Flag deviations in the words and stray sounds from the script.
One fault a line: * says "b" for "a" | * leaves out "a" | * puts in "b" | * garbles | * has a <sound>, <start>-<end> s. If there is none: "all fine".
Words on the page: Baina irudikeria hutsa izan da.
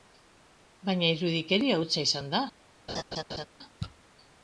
* has a laugh, 2.9-3.5 s